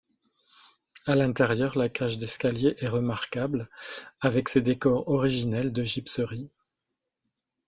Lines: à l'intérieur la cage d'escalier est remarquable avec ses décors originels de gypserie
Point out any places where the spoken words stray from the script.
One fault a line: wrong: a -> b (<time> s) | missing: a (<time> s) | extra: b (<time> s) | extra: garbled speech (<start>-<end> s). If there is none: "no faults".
no faults